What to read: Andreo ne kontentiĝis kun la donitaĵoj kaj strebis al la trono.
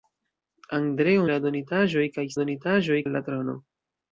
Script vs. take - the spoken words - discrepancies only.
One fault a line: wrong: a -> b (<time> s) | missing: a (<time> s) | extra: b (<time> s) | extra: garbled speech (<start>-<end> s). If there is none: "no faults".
missing: ne kontentiĝis kun (1.3 s)
wrong: strebis -> donitaĵoj (2.4 s)